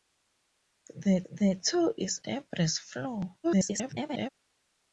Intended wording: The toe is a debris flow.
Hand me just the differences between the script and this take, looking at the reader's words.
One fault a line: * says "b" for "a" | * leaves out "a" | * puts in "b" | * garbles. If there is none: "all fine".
* puts in "the"
* leaves out "a"
* garbles